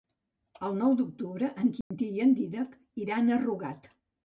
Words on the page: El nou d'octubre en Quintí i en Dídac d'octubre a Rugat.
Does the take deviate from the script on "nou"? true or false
false